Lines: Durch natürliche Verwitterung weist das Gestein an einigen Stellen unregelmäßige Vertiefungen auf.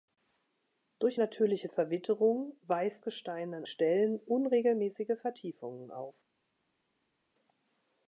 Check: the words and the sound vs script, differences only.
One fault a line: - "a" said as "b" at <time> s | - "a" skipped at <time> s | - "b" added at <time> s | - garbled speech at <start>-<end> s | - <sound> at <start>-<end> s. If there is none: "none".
- "das" skipped at 3.0 s
- "einigen" skipped at 3.6 s